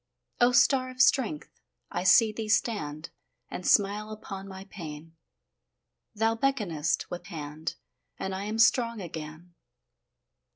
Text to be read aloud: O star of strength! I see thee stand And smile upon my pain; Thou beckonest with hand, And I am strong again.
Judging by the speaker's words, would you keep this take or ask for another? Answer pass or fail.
pass